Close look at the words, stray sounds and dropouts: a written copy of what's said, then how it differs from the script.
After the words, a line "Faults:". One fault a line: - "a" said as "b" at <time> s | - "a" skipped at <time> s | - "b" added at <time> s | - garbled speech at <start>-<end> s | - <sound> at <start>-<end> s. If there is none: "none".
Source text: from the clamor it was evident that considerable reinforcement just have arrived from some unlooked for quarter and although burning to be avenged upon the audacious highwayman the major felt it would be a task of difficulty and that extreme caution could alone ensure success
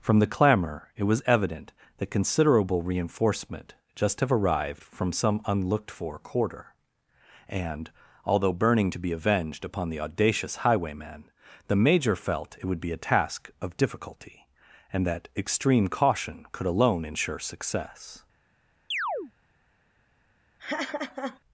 from the clamor it was evident that considerable reinforcement just have arrived from some unlooked for quarter and although burning to be avenged upon the audacious highwayman the major felt it would be a task of difficulty and that extreme caution could alone ensure success
Faults:
- chirp at 18.9-19.3 s
- laugh at 20.6-21.4 s